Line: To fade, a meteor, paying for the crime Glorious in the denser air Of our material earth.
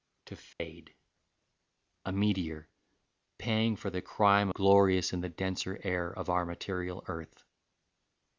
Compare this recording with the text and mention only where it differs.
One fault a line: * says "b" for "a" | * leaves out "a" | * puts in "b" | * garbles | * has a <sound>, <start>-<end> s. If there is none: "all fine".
* has a dropout, 0.5-0.6 s